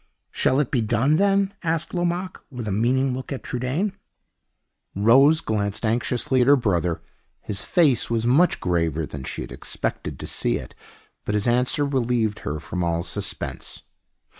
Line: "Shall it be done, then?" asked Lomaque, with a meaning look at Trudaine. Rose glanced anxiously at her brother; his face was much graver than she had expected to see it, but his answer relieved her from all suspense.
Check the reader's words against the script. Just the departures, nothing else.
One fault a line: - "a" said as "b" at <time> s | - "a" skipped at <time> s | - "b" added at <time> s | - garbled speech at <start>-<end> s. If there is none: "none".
none